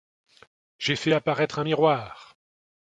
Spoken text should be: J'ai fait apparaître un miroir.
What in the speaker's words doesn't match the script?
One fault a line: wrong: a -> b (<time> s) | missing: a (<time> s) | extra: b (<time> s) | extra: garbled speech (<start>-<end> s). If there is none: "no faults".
no faults